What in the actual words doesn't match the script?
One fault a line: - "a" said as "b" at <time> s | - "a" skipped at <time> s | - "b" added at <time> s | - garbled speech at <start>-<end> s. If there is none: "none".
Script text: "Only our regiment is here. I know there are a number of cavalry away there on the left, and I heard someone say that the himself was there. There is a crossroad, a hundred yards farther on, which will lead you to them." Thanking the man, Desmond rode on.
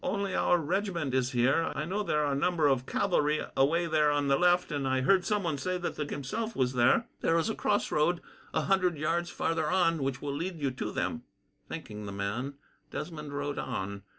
none